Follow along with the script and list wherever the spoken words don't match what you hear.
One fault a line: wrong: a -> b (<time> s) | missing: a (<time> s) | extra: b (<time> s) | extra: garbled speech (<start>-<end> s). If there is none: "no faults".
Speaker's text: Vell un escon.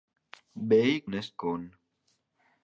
no faults